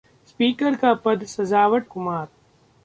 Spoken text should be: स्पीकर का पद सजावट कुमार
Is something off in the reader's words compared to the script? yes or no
no